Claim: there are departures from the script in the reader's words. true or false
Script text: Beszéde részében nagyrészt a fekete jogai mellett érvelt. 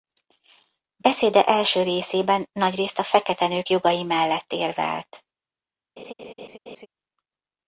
true